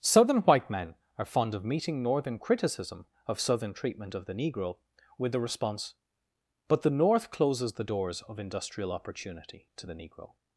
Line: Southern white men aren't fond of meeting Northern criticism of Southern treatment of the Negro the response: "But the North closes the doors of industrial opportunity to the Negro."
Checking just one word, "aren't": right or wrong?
wrong